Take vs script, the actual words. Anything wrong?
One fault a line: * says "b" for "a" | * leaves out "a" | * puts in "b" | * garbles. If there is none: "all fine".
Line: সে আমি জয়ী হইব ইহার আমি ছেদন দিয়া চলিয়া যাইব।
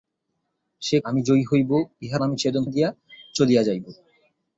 all fine